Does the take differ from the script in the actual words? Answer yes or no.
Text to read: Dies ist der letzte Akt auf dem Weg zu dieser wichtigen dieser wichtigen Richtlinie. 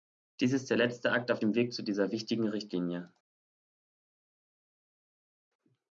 yes